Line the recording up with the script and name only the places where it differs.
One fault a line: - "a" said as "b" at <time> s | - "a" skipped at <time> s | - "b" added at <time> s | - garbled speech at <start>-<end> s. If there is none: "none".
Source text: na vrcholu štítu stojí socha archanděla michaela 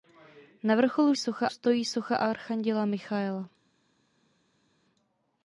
- "štítu" said as "socha" at 1.2 s